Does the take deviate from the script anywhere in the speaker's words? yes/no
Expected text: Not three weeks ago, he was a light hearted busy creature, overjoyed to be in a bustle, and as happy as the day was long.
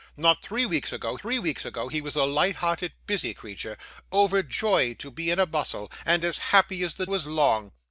yes